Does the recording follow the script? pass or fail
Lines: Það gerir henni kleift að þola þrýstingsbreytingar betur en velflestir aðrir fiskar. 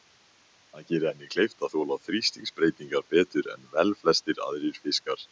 pass